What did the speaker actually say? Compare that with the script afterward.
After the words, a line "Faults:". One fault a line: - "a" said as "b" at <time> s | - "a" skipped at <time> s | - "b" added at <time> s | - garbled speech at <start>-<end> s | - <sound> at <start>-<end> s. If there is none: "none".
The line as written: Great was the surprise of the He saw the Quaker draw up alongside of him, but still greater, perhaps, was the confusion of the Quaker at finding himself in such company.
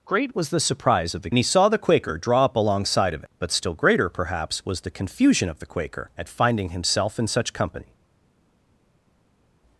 Great was the surprise of the He saw the Quaker draw up alongside of him, but still greater, perhaps, was the confusion of the Quaker at finding himself in such company.
Faults:
none